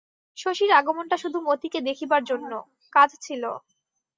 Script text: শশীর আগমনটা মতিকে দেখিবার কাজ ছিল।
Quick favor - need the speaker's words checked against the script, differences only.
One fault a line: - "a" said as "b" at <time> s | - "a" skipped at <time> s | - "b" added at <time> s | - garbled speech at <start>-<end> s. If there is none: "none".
- "শুধু" added at 1.2 s
- "জন্য" added at 2.2 s